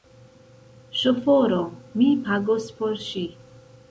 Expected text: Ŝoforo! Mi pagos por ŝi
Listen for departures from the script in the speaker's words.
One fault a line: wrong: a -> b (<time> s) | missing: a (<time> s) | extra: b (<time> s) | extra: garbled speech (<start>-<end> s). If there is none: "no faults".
no faults